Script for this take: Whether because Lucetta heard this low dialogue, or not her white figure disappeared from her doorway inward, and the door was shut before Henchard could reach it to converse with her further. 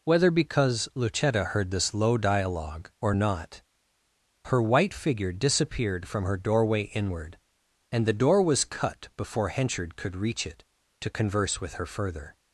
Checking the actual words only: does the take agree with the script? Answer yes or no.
no